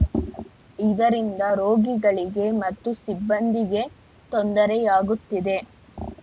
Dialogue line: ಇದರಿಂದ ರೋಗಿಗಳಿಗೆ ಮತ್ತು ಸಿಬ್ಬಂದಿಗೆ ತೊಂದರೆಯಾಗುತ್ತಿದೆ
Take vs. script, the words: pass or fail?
pass